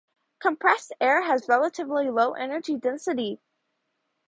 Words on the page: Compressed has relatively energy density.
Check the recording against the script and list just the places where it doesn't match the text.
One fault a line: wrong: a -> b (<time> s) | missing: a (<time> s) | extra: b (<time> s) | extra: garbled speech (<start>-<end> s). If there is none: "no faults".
extra: air (1.0 s)
extra: low (2.1 s)